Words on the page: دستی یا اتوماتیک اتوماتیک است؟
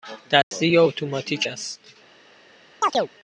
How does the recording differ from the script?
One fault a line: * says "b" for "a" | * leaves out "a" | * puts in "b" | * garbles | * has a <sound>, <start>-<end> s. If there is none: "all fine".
* has a dropout, 0.4-0.5 s
* leaves out "اتوماتیک"
* has a chirp, 2.8-3.1 s